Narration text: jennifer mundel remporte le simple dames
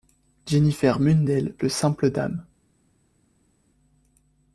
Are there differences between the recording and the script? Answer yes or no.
yes